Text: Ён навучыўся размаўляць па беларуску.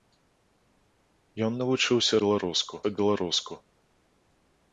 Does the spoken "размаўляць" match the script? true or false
false